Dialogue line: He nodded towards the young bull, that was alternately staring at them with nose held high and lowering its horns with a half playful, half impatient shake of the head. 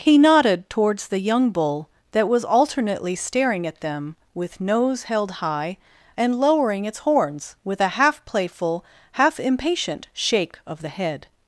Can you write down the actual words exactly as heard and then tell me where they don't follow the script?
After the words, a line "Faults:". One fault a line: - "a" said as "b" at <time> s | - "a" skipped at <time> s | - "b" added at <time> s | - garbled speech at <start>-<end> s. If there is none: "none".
He nodded towards the young bull, that was alternately staring at them with nose held high and lowering its horns with a half playful, half impatient shake of the head.
Faults:
none